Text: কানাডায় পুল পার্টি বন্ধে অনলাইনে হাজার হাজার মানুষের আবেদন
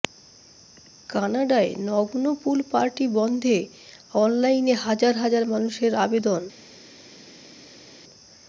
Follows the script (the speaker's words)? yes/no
no